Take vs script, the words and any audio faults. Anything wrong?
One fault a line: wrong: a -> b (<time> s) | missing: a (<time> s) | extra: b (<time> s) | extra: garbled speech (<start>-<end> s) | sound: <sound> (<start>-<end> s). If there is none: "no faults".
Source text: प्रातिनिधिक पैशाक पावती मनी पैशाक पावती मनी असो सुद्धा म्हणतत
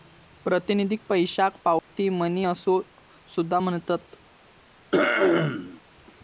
sound: dropout (1.8-1.9 s)
missing: पैशाक पावती मनी (2.5 s)
sound: throat clearing (4.9-5.8 s)